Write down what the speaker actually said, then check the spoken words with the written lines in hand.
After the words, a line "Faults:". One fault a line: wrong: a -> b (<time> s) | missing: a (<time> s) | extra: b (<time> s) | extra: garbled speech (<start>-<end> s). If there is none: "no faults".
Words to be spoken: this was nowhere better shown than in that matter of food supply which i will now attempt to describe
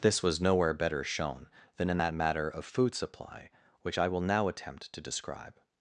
this was nowhere better shown than in that matter of food supply which i will now attempt to describe
Faults:
no faults